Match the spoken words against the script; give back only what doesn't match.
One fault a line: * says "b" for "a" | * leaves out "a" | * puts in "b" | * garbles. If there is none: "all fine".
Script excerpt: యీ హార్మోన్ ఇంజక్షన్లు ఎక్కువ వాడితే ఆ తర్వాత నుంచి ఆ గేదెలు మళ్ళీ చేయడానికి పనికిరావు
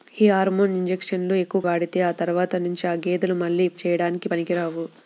all fine